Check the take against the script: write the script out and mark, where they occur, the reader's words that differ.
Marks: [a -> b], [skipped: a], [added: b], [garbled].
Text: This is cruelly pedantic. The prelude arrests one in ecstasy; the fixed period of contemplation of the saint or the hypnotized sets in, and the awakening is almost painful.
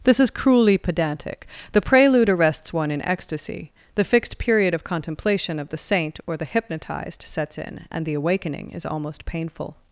This is cruelly pedantic. The prelude arrests one in ecstasy; the fixed period of contemplation of the saint or the hypnotized sets in, and the awakening is almost painful.